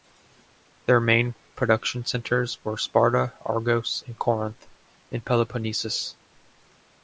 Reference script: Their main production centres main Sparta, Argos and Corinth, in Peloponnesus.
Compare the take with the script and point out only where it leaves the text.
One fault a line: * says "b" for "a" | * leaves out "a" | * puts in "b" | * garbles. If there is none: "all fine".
* says "were" for "main"